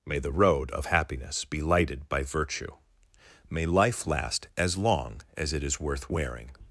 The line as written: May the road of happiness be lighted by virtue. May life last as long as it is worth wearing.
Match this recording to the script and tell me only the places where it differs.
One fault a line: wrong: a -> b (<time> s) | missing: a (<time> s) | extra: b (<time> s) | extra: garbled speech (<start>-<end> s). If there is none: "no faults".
no faults